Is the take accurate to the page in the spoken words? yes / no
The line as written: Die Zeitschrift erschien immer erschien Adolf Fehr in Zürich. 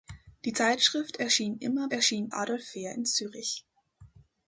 yes